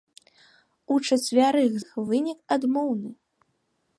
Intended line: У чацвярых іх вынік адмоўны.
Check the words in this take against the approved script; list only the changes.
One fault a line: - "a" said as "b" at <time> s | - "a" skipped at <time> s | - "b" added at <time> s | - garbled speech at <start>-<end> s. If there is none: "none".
none